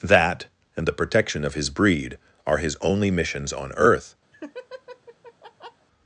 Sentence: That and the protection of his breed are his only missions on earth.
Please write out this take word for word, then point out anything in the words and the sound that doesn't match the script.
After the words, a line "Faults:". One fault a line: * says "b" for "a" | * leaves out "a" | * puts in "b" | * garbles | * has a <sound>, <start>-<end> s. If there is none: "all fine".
That and the protection of his breed are his only missions on earth.
Faults:
* has a laugh, 4.3-5.9 s